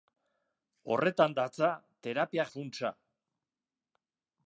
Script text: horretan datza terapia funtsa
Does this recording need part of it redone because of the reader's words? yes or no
no